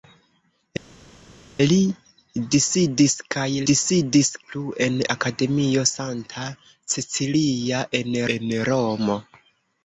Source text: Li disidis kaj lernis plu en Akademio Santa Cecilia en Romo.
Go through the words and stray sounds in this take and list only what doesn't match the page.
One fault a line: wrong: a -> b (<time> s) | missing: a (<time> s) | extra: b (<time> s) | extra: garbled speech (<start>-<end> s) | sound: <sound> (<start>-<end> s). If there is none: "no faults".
wrong: lernis -> disidis (3.7 s)
extra: en (8.4 s)